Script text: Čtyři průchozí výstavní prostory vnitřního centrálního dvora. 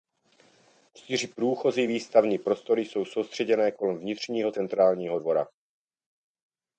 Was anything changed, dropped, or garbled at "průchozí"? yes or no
no